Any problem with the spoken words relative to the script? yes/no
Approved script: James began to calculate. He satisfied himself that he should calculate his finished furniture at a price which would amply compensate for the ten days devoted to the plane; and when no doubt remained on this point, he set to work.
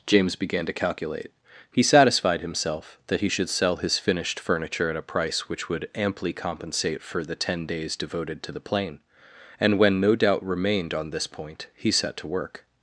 yes